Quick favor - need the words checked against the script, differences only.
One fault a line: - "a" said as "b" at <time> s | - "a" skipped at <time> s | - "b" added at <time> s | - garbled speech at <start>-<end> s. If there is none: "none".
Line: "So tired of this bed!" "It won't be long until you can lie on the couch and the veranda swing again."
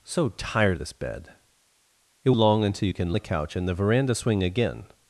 - "of" skipped at 0.8 s
- "won't be" skipped at 2.3 s
- "lie on" skipped at 3.2 s